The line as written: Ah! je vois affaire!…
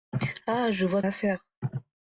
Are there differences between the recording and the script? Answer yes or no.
no